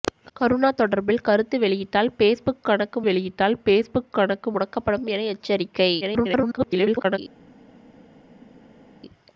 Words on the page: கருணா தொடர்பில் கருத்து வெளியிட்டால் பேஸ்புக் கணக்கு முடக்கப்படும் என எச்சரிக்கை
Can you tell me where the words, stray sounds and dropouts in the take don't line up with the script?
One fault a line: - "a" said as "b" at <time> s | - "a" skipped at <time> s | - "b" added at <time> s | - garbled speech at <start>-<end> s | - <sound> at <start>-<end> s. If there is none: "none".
- "வெளியிட்டால் பேஸ்புக் கணக்கு" added at 3.0 s
- garbled speech at 6.0-7.2 s